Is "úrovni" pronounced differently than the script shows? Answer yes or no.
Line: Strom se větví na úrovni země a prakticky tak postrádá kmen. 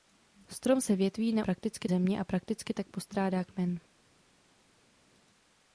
yes